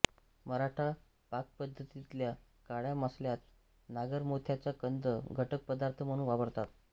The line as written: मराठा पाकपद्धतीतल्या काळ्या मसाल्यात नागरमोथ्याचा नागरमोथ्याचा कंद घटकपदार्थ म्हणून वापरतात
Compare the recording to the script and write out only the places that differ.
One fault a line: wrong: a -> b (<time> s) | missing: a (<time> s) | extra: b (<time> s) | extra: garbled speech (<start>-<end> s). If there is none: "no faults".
missing: नागरमोथ्याचा (4.7 s)